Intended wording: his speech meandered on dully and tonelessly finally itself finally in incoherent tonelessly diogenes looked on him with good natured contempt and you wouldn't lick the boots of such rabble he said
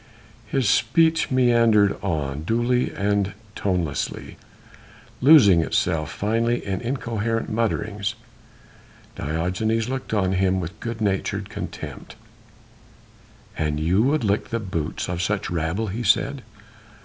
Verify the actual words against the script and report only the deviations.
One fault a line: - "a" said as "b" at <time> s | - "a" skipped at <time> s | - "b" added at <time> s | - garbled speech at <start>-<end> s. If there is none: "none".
- "finally" said as "losing" at 5.2 s
- "tonelessly" said as "mutterings" at 7.5 s
- "wouldn't" said as "would" at 14.0 s